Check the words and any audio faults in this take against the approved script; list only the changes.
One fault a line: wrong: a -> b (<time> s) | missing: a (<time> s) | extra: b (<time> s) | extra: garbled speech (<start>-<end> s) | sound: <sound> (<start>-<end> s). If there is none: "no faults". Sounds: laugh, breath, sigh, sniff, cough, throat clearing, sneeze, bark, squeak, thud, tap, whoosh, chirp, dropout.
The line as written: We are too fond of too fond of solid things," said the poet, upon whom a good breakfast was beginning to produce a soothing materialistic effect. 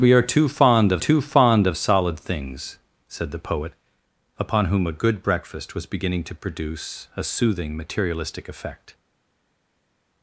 no faults